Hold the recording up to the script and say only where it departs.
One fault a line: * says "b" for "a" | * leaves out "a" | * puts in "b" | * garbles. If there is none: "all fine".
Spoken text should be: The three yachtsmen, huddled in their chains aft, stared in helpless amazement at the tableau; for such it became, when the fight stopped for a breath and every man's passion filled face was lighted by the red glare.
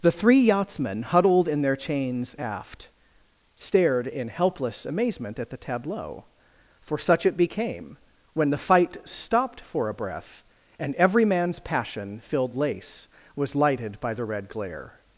* says "lace" for "face"